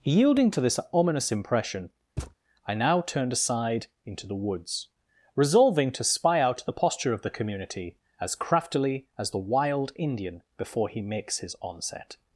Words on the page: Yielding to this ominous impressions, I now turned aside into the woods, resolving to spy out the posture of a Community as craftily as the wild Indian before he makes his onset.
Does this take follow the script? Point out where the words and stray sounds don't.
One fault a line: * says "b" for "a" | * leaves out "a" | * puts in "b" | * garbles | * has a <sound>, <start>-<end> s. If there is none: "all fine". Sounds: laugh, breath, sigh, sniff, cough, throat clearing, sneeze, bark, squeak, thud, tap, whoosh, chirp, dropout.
* says "impression" for "impressions"
* has a thud, 2.2-2.3 s
* says "the" for "a"